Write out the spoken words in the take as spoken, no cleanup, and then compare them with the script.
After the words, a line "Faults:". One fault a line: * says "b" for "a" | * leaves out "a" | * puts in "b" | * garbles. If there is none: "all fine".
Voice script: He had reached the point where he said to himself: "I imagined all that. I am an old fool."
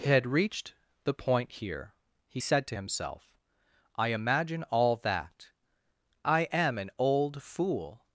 He had reached the point here he said to himself: "I imagine all that. I am an old fool."
Faults:
* says "here" for "where"
* says "imagine" for "imagined"